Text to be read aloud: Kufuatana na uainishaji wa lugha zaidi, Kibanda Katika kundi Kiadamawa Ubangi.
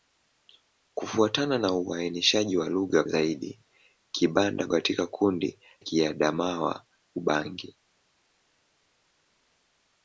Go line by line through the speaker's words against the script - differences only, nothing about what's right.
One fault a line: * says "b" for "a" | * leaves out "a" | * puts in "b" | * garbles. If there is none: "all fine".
all fine